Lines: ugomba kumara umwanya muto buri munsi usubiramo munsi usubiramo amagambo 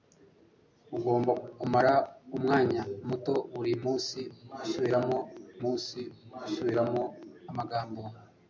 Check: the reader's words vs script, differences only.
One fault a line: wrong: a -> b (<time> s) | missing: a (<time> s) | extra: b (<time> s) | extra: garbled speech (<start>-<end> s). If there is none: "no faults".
no faults